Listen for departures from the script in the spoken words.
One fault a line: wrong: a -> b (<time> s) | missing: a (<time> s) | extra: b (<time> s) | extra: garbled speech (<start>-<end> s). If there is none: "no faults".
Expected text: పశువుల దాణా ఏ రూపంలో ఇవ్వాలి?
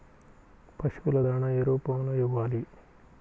no faults